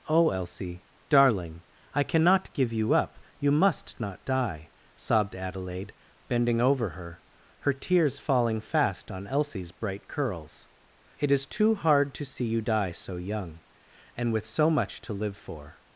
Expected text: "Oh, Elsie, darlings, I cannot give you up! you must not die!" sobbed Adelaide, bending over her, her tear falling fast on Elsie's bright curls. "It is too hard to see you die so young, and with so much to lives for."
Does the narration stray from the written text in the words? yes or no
yes